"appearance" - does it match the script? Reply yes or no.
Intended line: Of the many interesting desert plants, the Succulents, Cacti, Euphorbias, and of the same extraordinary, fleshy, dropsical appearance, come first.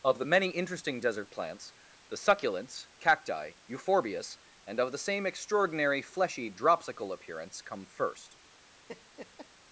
yes